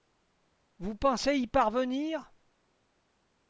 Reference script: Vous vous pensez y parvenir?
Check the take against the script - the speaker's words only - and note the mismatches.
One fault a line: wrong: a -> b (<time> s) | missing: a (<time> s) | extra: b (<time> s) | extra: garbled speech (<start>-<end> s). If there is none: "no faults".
missing: vous (0.9 s)